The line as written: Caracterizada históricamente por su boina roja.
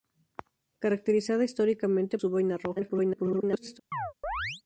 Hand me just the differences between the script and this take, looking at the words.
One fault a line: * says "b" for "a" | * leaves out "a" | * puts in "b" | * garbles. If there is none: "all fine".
* leaves out "por"
* garbles